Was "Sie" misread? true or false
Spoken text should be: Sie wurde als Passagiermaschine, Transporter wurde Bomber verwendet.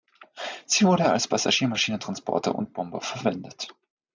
false